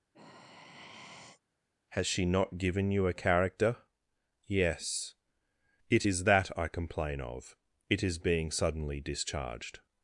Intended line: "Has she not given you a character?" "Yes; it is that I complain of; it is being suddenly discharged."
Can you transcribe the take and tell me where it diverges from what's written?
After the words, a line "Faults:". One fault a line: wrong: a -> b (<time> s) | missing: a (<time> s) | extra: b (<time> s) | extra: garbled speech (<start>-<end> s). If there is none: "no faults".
"Has she not given you a character?" "Yes; it is that I complain of; it is being suddenly discharged."
Faults:
no faults